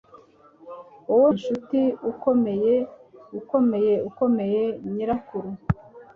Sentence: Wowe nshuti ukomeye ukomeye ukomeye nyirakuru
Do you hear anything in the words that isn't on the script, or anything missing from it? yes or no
no